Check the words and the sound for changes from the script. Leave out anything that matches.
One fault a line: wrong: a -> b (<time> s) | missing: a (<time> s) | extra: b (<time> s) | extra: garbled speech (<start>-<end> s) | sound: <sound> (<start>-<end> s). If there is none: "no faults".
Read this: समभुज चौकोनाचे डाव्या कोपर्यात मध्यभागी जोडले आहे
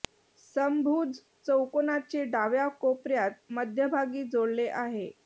no faults